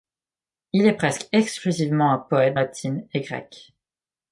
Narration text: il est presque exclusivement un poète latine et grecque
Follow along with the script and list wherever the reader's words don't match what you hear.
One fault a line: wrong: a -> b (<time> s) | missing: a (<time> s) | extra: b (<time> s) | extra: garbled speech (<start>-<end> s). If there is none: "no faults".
no faults